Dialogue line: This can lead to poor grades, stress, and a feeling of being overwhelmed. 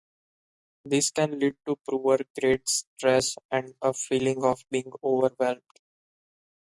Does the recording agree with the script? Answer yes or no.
yes